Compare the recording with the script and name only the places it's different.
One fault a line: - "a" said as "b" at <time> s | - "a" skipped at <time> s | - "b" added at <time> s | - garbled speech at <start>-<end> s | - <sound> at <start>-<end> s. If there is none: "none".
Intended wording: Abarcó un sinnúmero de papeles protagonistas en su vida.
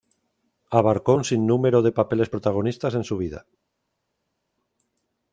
none